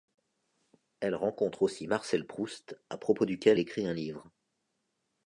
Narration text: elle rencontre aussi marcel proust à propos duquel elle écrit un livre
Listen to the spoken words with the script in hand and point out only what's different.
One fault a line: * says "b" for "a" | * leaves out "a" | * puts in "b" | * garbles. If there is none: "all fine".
* leaves out "elle"